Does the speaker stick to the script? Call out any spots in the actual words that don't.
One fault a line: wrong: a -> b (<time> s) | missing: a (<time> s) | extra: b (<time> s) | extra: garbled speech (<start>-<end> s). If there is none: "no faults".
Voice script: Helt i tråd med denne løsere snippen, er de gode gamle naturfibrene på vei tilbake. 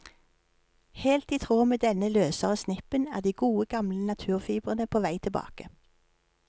no faults